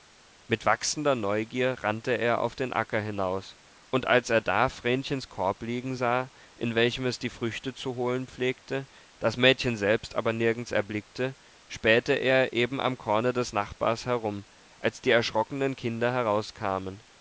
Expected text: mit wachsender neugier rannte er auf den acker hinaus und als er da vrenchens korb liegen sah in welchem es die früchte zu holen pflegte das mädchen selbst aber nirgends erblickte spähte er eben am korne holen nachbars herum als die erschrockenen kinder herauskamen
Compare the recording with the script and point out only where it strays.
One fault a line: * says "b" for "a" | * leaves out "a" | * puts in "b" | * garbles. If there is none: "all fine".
* says "des" for "holen"